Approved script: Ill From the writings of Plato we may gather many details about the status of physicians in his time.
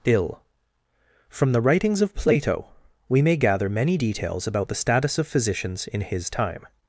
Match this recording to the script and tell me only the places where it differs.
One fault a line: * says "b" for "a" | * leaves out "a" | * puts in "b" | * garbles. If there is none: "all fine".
all fine